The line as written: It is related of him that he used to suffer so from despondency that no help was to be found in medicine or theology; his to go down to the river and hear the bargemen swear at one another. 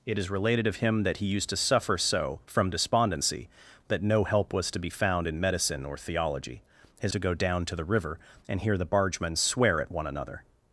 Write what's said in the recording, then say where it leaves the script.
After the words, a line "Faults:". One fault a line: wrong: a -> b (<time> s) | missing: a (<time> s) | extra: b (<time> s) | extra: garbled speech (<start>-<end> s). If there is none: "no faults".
It is related of him that he used to suffer so from despondency that no help was to be found in medicine or theology; his to go down to the river and hear the bargemen swear at one another.
Faults:
no faults